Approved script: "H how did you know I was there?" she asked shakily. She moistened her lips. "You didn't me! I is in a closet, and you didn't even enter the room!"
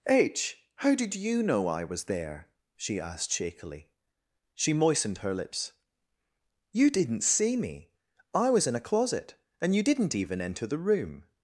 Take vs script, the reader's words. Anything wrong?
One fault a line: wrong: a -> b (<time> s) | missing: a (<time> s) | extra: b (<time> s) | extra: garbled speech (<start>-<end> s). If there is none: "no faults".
extra: see (7.2 s)
wrong: is -> was (8.5 s)